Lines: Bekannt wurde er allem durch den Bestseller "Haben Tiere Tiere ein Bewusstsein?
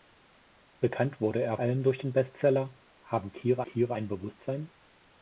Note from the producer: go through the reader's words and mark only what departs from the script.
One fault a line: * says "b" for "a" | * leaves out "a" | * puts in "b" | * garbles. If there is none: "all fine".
all fine